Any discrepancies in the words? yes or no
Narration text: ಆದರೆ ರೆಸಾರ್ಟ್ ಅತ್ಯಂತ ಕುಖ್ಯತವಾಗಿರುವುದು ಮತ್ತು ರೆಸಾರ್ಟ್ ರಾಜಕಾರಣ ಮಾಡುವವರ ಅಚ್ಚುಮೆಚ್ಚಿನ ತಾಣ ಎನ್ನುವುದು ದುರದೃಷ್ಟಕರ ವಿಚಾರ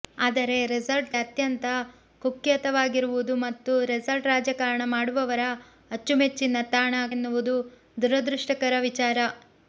no